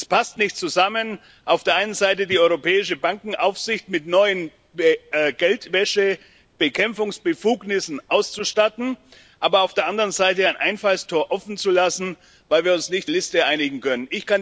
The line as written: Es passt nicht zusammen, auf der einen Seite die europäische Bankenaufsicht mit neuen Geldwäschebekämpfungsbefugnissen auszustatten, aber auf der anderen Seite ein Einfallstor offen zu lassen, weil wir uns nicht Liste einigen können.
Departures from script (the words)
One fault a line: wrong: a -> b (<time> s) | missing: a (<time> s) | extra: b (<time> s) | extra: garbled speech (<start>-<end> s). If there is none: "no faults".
no faults